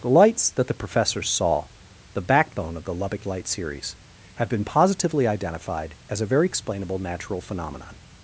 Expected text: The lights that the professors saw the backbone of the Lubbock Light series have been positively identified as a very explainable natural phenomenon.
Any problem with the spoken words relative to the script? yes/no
no